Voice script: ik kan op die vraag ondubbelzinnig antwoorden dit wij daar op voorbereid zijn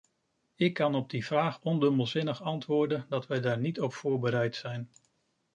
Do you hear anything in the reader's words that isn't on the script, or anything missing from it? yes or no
yes